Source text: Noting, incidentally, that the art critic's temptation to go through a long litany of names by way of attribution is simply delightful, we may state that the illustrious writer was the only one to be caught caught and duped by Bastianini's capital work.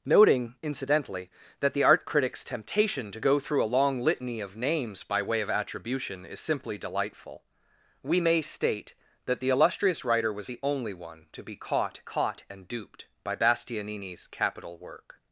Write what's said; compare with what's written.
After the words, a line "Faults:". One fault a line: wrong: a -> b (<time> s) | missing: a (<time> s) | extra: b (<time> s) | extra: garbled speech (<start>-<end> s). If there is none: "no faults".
Noting, incidentally, that the art critic's temptation to go through a long litany of names by way of attribution is simply delightful, we may state that the illustrious writer was the only one to be caught caught and duped by Bastianini's capital work.
Faults:
no faults